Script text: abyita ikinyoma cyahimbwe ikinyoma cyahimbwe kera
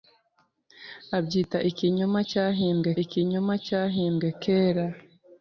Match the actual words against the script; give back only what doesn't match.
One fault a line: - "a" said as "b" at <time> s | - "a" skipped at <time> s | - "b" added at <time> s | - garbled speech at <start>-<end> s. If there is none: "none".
none